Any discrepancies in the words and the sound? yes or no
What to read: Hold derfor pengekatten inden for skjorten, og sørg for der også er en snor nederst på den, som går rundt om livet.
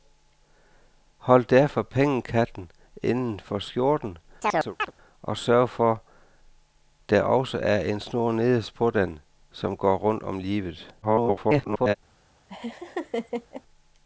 yes